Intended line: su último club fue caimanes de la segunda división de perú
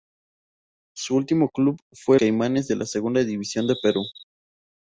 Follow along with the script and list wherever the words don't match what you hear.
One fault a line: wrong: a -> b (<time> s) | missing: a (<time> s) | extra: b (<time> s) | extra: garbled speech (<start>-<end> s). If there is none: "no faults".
no faults